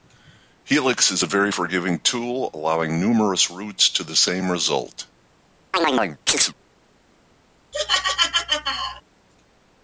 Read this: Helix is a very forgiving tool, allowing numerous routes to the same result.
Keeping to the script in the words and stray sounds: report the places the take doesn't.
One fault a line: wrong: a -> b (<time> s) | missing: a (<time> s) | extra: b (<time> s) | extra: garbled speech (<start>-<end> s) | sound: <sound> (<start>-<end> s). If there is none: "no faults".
sound: chirp (5.7-6.5 s)
sound: laugh (7.7-9.0 s)